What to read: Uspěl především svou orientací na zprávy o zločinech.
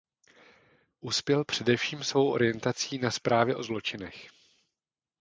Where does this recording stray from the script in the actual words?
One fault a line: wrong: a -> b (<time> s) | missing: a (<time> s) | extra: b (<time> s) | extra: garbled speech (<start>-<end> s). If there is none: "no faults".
no faults